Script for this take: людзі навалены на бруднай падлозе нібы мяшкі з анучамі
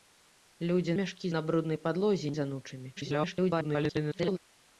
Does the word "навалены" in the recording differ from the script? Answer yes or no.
yes